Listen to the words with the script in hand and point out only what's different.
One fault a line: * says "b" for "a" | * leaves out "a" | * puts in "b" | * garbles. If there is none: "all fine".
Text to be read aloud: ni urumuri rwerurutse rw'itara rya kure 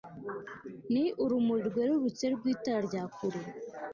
all fine